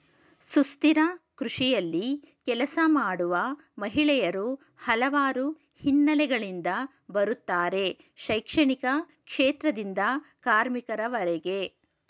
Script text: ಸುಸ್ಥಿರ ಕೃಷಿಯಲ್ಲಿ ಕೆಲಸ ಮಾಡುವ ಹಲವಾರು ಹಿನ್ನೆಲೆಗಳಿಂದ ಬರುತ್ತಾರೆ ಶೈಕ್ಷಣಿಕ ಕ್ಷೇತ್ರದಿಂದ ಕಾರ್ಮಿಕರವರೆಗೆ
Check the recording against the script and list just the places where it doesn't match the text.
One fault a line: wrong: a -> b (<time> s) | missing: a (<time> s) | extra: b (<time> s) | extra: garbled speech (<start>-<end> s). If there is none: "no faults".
extra: ಮಹಿಳೆಯರು (3.8 s)